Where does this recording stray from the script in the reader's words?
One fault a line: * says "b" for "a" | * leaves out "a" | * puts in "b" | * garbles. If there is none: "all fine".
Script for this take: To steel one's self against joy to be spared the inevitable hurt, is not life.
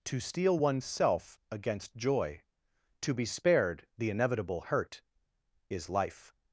* leaves out "not"